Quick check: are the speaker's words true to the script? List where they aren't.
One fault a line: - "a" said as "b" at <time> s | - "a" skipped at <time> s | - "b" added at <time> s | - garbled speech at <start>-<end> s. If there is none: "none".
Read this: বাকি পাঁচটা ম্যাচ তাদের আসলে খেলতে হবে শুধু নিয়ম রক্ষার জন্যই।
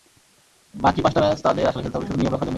none